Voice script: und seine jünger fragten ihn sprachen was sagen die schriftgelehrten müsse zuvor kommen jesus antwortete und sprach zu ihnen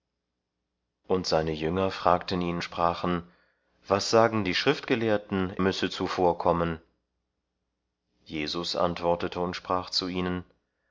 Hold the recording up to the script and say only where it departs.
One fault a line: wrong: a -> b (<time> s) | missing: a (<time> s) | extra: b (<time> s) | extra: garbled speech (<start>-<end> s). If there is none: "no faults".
no faults